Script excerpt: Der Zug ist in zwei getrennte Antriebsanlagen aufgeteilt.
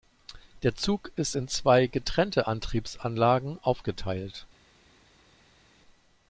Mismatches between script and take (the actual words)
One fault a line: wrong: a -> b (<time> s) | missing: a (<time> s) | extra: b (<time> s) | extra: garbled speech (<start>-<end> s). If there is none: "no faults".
no faults